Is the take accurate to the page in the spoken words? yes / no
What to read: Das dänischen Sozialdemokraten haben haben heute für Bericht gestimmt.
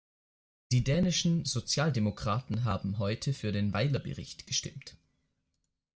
no